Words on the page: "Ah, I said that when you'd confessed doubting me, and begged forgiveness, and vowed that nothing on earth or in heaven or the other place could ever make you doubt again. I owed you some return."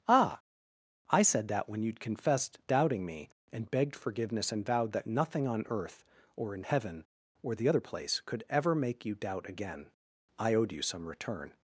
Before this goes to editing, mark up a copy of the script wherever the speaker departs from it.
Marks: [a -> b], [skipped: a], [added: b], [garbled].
"Ah, I said that when you'd confessed doubting me, and begged forgiveness, and vowed that nothing on earth or in heaven or the other place could ever make you doubt again. I owed you some return."